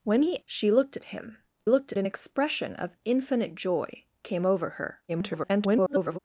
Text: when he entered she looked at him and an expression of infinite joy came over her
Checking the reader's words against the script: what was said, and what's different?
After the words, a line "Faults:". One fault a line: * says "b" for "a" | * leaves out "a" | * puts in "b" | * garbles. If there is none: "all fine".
when he she looked at him looked an expression of infinite joy came over her [garbled]
Faults:
* leaves out "entered"
* says "looked" for "and"
* garbles